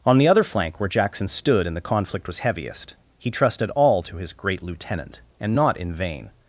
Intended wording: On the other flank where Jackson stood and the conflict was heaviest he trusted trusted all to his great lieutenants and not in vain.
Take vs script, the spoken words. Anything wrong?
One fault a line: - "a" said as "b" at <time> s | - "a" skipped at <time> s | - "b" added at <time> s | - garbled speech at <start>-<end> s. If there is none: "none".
- "trusted" skipped at 3.7 s
- "lieutenants" said as "lieutenant" at 4.6 s